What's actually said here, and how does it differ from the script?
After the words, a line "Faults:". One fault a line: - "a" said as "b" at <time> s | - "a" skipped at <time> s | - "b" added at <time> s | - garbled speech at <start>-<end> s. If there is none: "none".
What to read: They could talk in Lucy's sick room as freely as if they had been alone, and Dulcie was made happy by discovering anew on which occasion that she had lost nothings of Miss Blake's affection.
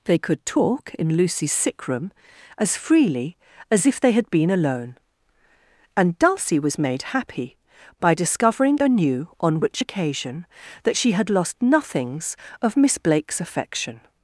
They could talk in Lucy's sick room as freely as if they had been alone, and Dulcie was made happy by discovering anew on which occasion that she had lost nothings of Miss Blake's affection.
Faults:
none